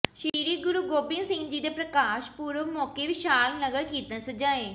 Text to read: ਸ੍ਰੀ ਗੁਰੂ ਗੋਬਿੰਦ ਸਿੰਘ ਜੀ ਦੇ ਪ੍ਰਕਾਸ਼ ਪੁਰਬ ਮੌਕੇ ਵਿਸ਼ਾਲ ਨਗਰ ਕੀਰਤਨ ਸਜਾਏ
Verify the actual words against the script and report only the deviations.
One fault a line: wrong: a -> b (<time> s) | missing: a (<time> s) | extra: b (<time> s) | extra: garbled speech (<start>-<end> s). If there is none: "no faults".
no faults